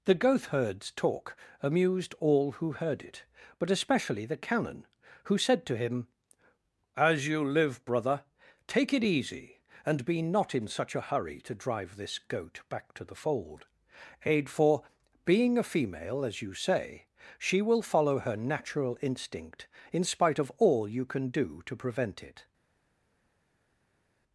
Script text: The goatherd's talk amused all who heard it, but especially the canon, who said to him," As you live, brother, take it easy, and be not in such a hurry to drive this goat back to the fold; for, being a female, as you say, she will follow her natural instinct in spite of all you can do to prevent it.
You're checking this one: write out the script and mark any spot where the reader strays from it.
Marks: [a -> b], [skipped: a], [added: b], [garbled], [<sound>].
The goatherd's talk amused all who heard it, but especially the canon, who said to him," As you live, brother, take it easy, and be not in such a hurry to drive this goat back to the fold; [added: aid] for, being a female, as you say, she will follow her natural instinct in spite of all you can do to prevent it.